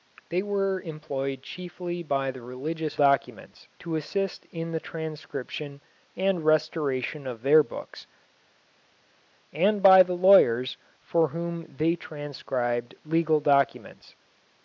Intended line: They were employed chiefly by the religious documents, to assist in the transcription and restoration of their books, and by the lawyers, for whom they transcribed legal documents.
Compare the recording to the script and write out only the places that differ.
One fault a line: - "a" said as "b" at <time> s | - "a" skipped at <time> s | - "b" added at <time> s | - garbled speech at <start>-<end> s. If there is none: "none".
none